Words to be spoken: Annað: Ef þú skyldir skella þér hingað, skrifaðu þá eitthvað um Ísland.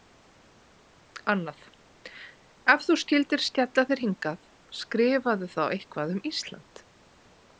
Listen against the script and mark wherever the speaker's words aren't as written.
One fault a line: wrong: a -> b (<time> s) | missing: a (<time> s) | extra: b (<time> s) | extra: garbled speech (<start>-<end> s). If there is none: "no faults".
no faults